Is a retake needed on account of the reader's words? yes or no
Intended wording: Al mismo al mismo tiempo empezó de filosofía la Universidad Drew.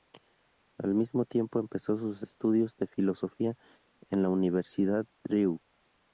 yes